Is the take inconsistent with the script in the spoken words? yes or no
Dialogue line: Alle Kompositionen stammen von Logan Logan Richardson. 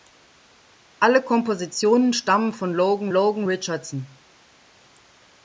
no